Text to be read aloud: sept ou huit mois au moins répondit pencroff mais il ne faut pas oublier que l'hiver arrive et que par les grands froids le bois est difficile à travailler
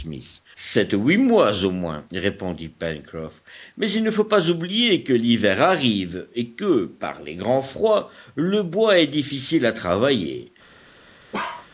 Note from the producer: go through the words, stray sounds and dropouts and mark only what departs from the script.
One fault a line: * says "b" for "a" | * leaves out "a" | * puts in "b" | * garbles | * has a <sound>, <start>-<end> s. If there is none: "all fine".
* has a bark, 11.3-11.7 s